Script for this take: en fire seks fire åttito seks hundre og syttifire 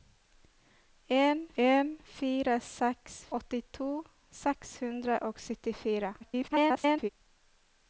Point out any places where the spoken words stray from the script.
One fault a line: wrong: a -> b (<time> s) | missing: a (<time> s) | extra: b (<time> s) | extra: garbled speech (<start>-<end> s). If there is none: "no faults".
extra: en (1.7 s)
missing: fire (3.1 s)
extra: garbled speech (6.2-7.1 s)